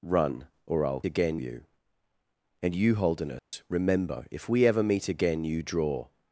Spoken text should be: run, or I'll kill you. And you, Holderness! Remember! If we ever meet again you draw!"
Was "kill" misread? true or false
true